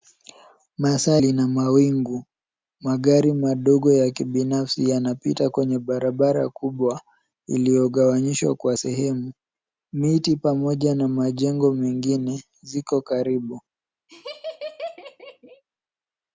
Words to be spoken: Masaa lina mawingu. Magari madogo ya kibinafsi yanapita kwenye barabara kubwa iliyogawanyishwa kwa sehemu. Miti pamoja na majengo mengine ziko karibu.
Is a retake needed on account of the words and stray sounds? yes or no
yes